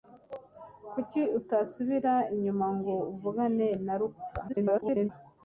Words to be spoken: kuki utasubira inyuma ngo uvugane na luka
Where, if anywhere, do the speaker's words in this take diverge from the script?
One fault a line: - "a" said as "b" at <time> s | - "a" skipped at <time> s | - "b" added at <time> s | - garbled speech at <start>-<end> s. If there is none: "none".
- garbled speech at 4.5-5.1 s